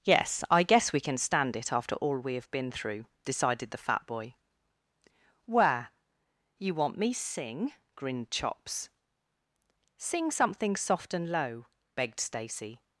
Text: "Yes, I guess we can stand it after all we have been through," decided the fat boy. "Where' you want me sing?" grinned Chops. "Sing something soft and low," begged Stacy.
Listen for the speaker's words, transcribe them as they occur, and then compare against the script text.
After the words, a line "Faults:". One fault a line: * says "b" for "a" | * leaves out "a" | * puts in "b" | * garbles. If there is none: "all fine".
"Yes, I guess we can stand it after all we have been through," decided the fat boy. "Where' you want me sing?" grinned Chops. "Sing something soft and low," begged Stacy.
Faults:
all fine